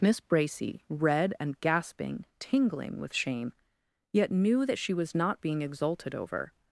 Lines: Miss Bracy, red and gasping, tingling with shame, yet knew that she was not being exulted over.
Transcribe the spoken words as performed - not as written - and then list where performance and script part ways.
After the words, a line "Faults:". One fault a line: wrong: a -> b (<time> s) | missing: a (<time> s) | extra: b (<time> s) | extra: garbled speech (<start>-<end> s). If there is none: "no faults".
Miss Bracy, red and gasping, tingling with shame, yet knew that she was not being exulted over.
Faults:
no faults